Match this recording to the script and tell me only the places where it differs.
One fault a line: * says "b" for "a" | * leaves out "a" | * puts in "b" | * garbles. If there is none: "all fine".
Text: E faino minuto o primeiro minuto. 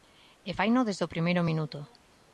* says "desde" for "minuto"